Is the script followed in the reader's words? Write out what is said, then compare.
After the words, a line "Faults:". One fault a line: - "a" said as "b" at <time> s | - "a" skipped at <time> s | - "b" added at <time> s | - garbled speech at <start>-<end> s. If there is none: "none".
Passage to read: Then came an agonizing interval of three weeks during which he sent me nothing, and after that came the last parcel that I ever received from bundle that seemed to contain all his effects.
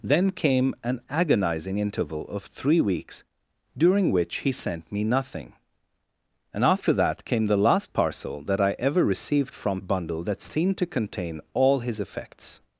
Then came an agonizing interval of three weeks during which he sent me nothing, and after that came the last parcel that I ever received from bundle that seemed to contain all his effects.
Faults:
none